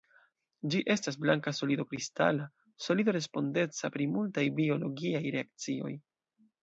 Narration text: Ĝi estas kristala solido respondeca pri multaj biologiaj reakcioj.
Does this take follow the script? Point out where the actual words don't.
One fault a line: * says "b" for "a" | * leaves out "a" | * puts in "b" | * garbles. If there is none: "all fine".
* puts in "blanka solido"